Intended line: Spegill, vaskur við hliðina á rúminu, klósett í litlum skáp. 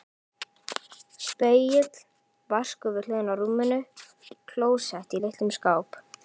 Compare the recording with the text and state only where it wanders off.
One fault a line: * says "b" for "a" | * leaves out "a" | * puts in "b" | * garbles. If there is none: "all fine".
all fine